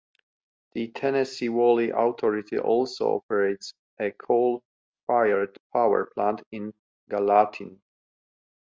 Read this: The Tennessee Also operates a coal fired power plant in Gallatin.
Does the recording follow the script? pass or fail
fail